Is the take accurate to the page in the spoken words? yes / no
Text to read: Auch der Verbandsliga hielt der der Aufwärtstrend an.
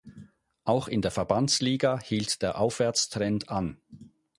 no